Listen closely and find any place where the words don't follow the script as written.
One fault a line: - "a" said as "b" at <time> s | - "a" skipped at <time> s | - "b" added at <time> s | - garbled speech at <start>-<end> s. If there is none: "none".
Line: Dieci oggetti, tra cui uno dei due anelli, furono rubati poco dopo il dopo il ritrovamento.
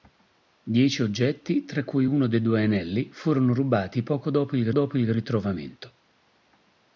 none